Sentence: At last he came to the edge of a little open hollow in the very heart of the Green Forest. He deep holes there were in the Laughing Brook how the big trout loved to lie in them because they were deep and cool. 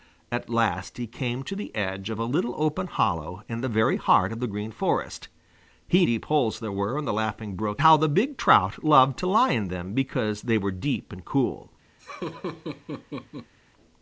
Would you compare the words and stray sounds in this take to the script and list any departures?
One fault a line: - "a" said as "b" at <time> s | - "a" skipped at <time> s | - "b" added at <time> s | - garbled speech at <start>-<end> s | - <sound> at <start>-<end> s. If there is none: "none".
- laugh at 12.0-13.5 s